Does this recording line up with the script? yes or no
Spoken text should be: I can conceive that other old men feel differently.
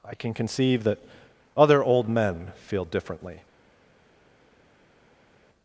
yes